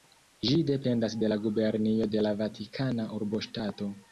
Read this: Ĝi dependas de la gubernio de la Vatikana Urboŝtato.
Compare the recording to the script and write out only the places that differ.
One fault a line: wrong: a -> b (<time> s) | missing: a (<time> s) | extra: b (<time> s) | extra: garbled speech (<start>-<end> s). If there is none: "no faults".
no faults